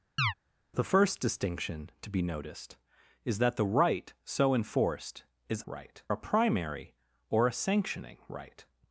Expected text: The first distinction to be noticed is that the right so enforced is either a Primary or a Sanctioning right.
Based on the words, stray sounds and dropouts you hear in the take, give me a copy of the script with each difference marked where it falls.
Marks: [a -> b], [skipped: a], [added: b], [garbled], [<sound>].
[chirp] The first distinction to be noticed is that the right so enforced is [either -> right] a Primary or a Sanctioning right.